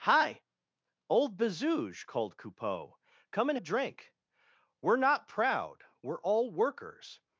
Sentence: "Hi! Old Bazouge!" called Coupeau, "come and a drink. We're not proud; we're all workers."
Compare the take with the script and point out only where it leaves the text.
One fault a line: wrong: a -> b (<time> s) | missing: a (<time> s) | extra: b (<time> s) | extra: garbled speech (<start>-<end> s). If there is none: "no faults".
no faults